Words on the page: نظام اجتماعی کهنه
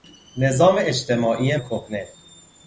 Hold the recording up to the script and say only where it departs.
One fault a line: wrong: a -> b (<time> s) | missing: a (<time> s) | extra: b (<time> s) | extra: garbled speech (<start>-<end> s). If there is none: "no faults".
no faults